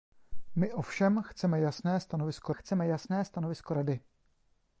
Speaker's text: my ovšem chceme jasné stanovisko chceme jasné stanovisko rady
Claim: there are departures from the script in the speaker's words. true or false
false